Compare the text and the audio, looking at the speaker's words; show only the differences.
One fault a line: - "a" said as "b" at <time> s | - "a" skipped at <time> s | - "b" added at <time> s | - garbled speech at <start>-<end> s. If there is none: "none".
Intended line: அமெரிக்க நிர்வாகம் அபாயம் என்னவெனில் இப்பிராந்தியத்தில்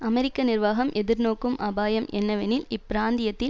- "எதிர்நோக்கும்" added at 0.9 s